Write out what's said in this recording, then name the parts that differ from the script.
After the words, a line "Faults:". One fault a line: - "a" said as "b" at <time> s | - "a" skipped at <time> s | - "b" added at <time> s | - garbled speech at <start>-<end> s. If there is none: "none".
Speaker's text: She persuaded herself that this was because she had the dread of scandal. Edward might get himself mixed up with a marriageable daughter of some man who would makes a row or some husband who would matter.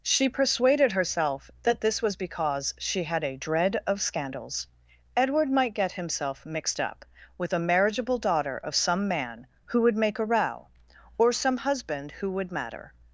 She persuaded herself that this was because she had a dread of scandals. Edward might get himself mixed up with a marriageable daughter of some man who would make a row or some husband who would matter.
Faults:
- "the" said as "a" at 3.2 s
- "scandal" said as "scandals" at 4.0 s
- "makes" said as "make" at 10.0 s